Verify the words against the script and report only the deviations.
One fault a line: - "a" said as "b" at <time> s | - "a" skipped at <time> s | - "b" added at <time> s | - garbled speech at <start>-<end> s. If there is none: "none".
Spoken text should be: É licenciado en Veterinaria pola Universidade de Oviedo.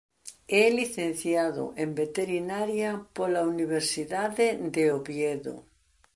none